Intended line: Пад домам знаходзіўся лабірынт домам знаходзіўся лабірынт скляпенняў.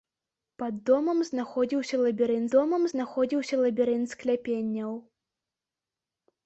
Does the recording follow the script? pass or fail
pass